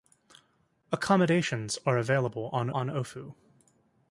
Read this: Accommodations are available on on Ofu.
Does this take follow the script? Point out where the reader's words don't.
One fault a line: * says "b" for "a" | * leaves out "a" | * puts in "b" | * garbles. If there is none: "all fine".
all fine